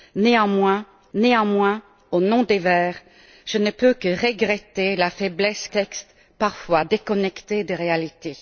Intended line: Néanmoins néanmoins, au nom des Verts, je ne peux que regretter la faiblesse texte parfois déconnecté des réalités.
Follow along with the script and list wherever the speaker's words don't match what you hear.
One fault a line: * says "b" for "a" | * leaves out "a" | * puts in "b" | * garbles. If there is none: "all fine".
all fine